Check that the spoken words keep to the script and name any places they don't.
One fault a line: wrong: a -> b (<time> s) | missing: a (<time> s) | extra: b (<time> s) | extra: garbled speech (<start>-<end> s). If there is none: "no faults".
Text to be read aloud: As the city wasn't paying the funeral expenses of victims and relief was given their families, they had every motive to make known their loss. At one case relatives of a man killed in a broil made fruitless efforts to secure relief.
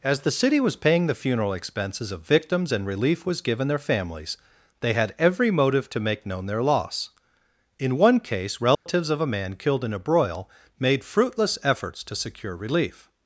wrong: wasn't -> was (0.6 s)
wrong: At -> In (7.8 s)